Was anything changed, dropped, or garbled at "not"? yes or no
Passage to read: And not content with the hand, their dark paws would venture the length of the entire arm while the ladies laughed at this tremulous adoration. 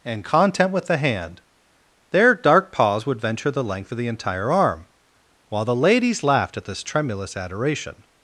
yes